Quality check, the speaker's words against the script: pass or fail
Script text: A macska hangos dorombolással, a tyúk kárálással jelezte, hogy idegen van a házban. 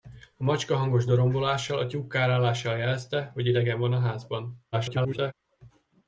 fail